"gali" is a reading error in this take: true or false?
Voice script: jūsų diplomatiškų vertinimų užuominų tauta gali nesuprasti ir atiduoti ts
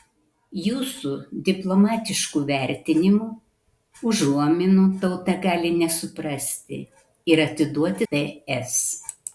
false